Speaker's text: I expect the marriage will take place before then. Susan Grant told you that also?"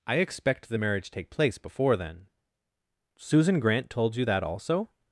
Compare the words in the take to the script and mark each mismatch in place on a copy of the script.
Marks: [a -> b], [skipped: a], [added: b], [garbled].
I expect the marriage [skipped: will] take place before then. Susan Grant told you that also?"